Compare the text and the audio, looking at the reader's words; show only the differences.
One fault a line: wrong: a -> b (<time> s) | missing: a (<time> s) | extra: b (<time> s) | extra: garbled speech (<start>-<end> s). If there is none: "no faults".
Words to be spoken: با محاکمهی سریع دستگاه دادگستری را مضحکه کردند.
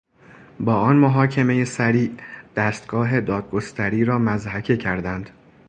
extra: آن (0.8 s)